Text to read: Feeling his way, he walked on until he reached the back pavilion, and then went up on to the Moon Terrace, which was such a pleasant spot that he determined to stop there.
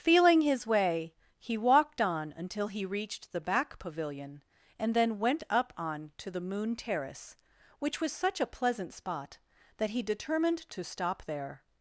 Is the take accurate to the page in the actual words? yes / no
yes